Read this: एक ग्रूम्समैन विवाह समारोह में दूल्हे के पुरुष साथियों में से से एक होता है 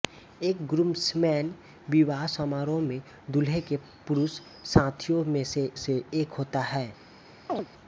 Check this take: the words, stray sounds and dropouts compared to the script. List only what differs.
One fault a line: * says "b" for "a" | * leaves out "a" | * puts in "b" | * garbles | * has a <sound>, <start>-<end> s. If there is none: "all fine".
* has a chirp, 7.5-7.7 s